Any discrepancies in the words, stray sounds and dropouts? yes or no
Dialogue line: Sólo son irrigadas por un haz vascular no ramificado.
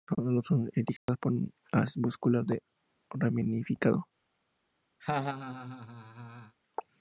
yes